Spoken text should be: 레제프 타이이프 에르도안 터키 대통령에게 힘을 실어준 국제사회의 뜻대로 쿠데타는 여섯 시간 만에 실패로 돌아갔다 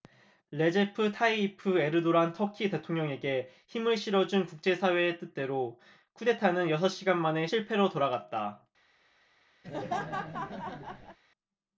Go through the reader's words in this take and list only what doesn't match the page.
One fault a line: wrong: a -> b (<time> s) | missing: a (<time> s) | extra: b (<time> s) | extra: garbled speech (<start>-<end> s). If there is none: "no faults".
no faults